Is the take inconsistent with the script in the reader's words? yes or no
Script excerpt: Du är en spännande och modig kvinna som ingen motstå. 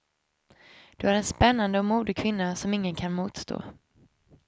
yes